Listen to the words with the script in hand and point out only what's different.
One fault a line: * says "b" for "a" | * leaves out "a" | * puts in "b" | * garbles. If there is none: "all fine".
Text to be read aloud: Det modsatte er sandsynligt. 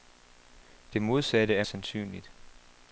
all fine